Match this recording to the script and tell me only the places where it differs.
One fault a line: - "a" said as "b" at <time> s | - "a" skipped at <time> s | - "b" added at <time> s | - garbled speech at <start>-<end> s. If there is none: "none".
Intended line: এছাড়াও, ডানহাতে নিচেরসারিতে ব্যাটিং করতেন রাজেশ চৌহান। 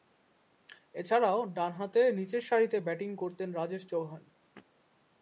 none